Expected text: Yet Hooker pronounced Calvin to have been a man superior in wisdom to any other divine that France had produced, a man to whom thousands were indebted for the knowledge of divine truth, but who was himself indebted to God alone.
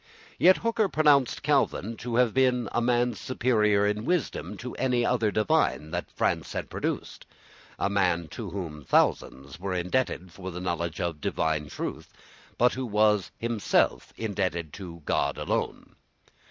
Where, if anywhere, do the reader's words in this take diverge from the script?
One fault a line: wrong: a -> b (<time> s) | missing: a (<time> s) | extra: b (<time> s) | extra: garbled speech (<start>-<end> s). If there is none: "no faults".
no faults